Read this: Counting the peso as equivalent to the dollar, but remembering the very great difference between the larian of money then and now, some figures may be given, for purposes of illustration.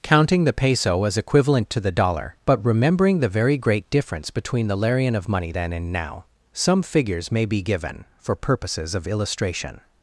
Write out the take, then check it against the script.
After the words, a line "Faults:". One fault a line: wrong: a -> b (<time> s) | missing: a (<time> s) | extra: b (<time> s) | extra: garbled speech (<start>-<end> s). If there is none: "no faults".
Counting the peso as equivalent to the dollar, but remembering the very great difference between the larian of money then and now, some figures may be given, for purposes of illustration.
Faults:
no faults